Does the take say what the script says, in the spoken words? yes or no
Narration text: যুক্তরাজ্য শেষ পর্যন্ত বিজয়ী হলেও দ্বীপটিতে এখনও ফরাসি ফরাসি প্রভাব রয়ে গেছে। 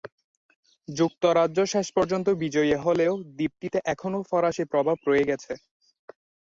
no